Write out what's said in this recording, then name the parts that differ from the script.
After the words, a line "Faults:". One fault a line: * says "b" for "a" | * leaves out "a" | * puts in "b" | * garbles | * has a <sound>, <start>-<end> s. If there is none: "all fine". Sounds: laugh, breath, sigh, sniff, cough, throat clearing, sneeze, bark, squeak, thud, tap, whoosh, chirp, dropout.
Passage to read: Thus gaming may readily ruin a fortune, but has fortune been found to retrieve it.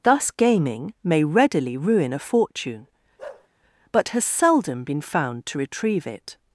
Thus gaming may readily ruin a fortune, but has seldom been found to retrieve it.
Faults:
* has a bark, 3.2-3.5 s
* says "seldom" for "fortune"